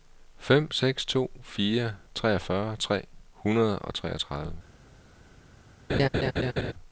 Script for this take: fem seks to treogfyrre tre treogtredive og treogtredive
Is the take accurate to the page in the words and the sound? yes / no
no